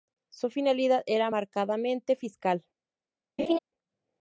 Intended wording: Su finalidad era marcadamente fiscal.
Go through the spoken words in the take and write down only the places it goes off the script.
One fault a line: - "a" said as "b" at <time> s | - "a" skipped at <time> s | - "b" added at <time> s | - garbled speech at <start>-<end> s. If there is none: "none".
none